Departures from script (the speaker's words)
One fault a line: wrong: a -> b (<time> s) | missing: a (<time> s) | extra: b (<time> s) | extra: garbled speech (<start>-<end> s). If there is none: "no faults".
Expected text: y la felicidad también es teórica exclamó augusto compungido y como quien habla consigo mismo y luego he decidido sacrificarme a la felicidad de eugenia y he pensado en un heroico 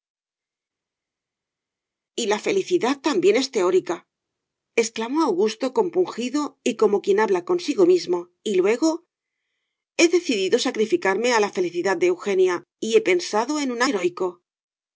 no faults